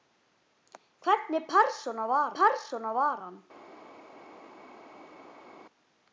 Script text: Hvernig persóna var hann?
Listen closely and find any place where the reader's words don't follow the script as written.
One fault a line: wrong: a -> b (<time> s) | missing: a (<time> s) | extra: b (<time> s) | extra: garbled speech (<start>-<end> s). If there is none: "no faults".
extra: persóna var (2.4 s)